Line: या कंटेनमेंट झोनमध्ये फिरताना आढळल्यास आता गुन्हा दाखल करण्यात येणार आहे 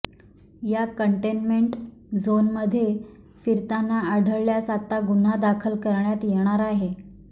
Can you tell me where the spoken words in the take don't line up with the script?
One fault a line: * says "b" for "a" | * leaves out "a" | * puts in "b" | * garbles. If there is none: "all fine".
all fine